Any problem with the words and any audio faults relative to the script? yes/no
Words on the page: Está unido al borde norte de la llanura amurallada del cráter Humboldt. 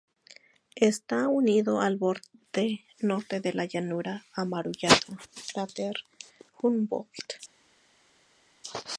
yes